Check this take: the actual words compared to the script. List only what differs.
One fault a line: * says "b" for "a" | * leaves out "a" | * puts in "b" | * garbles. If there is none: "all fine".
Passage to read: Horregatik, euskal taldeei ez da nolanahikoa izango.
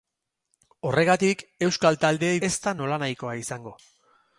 all fine